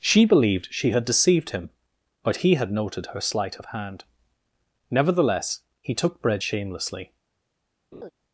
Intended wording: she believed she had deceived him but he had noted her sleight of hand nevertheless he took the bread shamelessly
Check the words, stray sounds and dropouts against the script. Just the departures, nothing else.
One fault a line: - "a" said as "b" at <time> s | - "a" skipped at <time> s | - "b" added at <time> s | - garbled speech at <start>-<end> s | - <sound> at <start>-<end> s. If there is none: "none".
- "the" skipped at 6.2 s
- laugh at 7.9-8.1 s